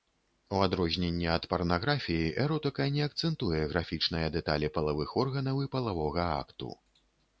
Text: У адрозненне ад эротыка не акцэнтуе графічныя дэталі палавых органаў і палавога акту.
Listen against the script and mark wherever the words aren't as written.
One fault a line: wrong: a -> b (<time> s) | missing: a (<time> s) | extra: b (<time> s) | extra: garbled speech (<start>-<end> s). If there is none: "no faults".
extra: парнаграфіі (1.5 s)